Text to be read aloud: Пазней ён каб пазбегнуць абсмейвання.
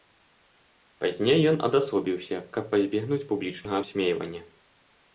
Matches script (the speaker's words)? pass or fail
fail